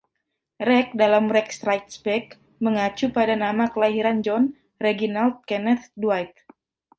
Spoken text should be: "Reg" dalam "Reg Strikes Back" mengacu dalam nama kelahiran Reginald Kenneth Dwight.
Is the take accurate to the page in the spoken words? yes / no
no